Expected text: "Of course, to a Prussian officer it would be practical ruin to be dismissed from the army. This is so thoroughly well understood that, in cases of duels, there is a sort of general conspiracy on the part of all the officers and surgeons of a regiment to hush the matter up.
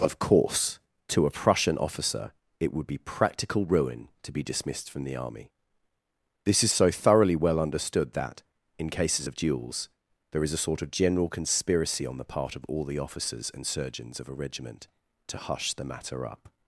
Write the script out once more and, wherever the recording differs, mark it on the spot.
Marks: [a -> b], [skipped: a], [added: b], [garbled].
"Of course, to a Prussian officer it would be practical ruin to be dismissed from the army. This is so thoroughly well understood that, in cases of duels, there is a sort of general conspiracy on the part of all the officers and surgeons of a regiment to hush the matter up.